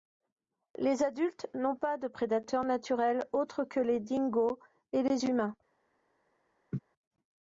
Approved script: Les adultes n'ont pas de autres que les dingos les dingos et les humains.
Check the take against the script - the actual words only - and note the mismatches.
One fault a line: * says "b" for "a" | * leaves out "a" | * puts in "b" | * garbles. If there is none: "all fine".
* puts in "prédateurs naturels"
* leaves out "les dingos"